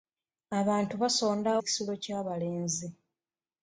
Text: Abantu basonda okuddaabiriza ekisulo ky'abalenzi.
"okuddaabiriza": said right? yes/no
no